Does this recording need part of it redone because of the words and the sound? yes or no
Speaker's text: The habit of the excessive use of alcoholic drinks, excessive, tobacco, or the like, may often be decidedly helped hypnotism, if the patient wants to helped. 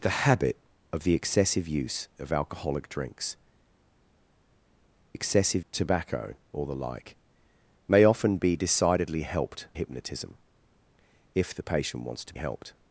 no